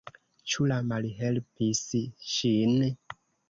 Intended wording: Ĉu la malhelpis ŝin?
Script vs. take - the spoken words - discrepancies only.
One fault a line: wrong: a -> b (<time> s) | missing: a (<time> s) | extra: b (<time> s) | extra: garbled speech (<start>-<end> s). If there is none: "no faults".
no faults